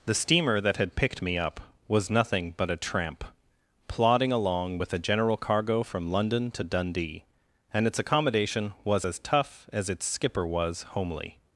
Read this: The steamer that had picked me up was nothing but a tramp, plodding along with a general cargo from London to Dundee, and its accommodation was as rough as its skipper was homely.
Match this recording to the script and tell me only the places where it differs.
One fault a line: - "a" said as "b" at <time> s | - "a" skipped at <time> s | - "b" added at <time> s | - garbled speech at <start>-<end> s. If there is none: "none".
- "rough" said as "tough" at 9.2 s